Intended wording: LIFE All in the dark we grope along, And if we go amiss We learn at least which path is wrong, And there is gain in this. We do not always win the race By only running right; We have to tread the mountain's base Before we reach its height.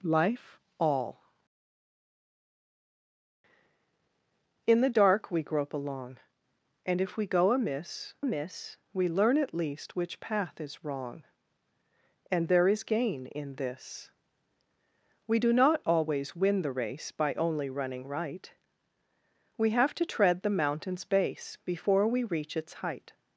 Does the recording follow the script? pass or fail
fail